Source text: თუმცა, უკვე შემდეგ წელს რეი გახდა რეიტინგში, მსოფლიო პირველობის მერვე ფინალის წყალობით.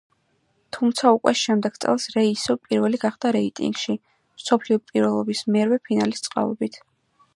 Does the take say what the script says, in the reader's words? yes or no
no